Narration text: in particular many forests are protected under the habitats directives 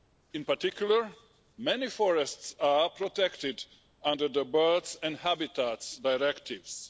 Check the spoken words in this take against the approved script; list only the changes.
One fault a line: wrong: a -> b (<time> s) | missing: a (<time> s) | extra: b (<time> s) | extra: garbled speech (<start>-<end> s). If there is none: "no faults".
extra: birds and (4.4 s)